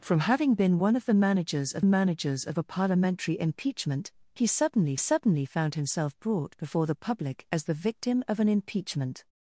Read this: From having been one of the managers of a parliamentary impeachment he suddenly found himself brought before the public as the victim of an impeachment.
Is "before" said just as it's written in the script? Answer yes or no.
yes